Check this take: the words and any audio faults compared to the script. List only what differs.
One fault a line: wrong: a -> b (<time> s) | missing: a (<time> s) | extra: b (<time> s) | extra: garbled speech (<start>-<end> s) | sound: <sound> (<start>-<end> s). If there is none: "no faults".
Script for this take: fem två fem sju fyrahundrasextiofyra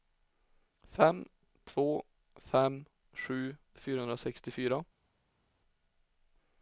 no faults